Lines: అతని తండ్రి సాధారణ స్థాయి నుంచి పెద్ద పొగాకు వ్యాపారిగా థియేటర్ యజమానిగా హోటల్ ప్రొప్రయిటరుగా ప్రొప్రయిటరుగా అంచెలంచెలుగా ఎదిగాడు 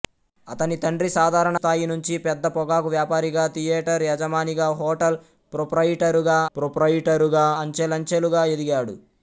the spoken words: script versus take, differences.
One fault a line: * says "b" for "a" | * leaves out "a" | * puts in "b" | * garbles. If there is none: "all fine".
all fine